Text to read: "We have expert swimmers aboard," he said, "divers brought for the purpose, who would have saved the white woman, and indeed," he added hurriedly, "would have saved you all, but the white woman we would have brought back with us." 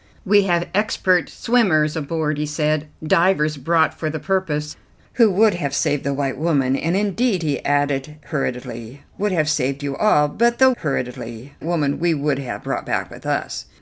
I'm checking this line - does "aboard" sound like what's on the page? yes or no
yes